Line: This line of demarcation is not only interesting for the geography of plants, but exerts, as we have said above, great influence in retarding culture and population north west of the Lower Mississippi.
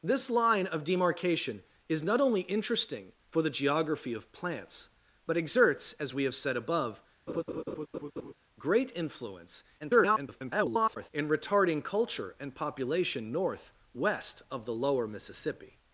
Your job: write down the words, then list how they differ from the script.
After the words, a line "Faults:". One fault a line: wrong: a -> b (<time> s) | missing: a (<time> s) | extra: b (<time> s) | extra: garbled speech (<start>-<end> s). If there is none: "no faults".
This line of demarcation is not only interesting for the geography of plants, but exerts, as we have said above, great influence [garbled] in retarding culture and population north west of the Lower Mississippi.
Faults:
extra: garbled speech (9.8-11.1 s)